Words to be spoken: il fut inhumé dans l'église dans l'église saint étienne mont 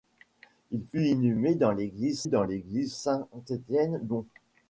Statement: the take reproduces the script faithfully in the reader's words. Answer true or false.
true